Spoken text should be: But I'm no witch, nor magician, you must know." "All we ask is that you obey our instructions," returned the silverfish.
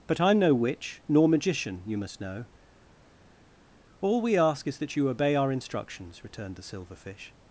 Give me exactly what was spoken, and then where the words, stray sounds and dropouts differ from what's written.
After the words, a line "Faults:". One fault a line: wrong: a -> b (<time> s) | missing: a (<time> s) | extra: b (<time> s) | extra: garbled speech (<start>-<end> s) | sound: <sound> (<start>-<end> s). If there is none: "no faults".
But I'm no witch, nor magician, you must know." "All we ask is that you obey our instructions," returned the silverfish.
Faults:
no faults